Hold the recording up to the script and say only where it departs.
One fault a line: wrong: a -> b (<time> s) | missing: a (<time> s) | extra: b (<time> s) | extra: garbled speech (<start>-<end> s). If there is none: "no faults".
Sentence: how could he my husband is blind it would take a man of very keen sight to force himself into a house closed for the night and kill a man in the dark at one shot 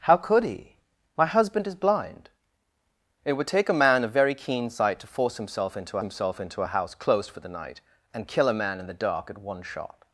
extra: himself into (6.0 s)